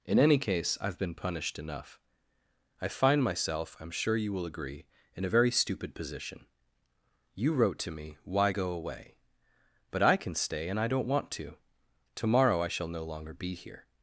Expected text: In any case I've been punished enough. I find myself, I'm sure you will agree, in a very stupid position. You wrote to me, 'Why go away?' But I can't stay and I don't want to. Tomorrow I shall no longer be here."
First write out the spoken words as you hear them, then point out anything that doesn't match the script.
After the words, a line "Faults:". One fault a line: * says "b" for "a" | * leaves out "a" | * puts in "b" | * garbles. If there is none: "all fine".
In any case I've been punished enough. I find myself, I'm sure you will agree, in a very stupid position. You wrote to me, 'Why go away?' But I can stay and I don't want to. Tomorrow I shall no longer be here."
Faults:
* says "can" for "can't"